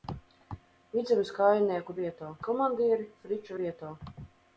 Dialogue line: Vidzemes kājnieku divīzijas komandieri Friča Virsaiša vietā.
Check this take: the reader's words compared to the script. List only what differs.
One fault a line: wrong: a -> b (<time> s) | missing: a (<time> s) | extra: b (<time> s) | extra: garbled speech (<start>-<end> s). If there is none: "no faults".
wrong: divīzijas -> vietā (2.0 s)
missing: Virsaiša (3.6 s)